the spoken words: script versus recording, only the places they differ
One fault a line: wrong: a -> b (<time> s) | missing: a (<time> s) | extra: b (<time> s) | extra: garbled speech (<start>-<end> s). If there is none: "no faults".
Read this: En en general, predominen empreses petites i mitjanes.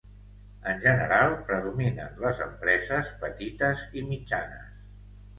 missing: en (0.8 s)
extra: les (2.2 s)